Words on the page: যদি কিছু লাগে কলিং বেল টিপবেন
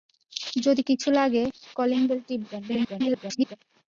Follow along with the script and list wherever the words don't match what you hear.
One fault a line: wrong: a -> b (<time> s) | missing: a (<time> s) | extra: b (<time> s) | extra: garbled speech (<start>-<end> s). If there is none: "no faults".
extra: garbled speech (2.7-3.6 s)